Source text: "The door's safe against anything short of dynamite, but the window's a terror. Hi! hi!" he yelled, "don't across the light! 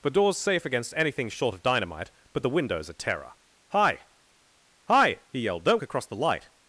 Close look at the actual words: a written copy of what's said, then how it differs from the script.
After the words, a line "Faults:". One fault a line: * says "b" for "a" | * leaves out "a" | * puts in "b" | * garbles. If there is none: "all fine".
"The door's safe against anything short of dynamite, but the window's a terror. Hi! hi!" he yelled, "don't across the light!
Faults:
all fine